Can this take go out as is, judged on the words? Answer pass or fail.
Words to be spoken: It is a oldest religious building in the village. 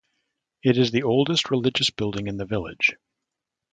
fail